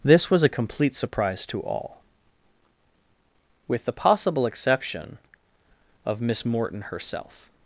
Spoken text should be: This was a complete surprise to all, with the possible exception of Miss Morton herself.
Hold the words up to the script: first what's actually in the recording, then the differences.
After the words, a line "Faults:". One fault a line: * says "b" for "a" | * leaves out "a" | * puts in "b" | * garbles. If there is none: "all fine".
This was a complete surprise to all, with the possible exception of Miss Morton herself.
Faults:
all fine